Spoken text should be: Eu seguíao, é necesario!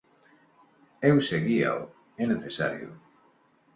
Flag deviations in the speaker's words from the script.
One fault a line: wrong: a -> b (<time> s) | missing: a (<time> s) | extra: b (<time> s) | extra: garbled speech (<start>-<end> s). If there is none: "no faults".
no faults